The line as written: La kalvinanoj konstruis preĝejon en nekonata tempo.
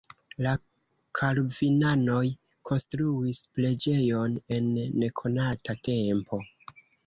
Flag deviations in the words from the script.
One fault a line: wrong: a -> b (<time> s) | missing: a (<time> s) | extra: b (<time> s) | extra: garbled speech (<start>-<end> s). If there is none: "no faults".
no faults